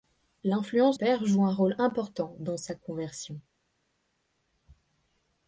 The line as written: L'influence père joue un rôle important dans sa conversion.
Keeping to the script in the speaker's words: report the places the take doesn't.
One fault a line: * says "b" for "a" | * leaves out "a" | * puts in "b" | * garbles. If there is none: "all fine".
all fine